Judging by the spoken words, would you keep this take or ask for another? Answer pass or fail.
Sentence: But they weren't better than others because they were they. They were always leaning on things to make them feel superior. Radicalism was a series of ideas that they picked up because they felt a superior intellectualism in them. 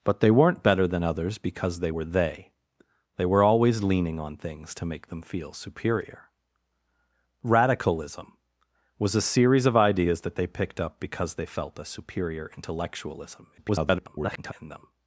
fail